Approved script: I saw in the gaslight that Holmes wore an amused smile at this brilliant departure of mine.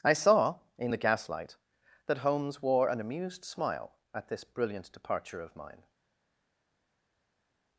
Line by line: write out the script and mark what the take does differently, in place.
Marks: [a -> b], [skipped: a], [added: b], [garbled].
I saw in the gaslight that Holmes wore an amused smile at this brilliant departure of mine.